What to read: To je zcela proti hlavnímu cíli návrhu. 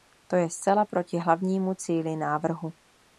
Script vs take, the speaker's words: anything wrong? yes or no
no